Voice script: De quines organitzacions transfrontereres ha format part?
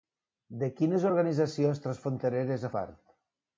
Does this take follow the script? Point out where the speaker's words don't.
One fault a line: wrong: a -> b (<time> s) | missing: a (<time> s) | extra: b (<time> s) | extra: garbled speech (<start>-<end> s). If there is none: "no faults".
missing: format (2.7 s)